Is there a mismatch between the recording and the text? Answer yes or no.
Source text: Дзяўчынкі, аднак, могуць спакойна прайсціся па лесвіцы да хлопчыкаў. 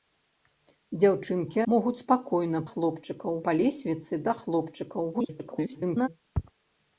yes